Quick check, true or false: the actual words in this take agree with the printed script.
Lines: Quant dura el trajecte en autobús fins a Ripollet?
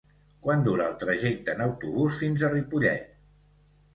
true